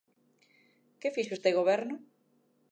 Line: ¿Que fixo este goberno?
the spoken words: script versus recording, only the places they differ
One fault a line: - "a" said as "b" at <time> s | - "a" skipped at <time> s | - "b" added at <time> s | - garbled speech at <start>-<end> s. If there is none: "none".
none